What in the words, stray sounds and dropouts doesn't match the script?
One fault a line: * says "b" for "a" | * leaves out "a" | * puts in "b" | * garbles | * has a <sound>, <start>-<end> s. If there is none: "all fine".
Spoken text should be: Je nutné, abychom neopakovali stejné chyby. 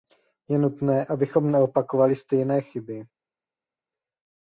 all fine